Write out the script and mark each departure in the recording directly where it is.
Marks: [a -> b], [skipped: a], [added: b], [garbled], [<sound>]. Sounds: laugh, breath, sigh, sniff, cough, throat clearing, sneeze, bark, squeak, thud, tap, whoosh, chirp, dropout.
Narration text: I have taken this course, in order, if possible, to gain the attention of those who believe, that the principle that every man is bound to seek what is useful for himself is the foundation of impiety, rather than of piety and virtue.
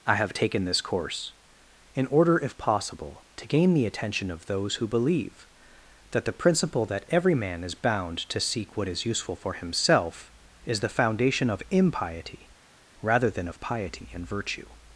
I have taken this course, in order, if possible, to gain the attention of those who believe, that the principle that every man is bound to seek what is useful for himself is the foundation of impiety, rather than of piety and virtue.